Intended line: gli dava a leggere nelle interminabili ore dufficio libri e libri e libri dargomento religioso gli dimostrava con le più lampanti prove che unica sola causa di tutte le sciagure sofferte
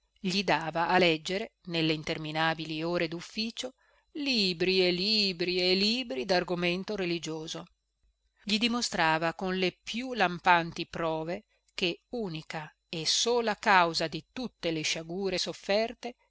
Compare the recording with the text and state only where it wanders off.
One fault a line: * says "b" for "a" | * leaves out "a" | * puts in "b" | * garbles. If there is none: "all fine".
* puts in "e"